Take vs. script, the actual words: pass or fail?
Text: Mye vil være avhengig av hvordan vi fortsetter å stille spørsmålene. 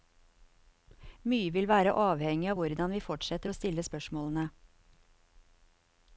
pass